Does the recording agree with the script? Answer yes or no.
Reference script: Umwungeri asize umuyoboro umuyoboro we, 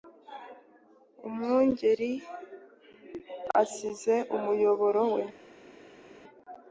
no